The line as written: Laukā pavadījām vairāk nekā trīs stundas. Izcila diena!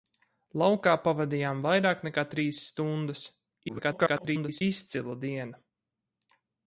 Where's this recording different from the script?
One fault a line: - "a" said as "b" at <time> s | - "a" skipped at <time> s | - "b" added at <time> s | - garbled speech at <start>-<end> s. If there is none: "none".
- garbled speech at 3.7-4.6 s